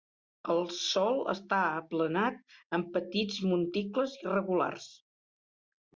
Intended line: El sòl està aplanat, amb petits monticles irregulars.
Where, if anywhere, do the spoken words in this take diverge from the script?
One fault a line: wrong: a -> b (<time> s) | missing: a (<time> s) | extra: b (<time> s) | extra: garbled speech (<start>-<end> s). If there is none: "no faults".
no faults